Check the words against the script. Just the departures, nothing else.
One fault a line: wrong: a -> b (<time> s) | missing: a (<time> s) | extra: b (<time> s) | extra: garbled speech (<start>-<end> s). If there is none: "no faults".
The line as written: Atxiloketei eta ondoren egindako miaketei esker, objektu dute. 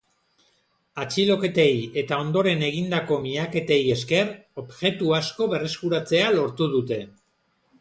extra: asko berreskuratzea lortu (5.2 s)